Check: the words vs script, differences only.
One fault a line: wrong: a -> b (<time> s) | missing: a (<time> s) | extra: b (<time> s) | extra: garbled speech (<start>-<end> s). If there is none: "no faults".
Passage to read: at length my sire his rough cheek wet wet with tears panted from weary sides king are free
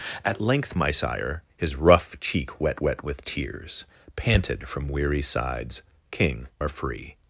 no faults